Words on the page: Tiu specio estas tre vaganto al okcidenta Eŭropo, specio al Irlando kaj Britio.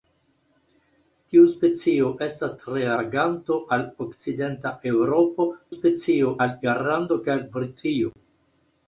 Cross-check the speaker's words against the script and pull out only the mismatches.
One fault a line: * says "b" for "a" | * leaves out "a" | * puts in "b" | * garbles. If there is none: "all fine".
all fine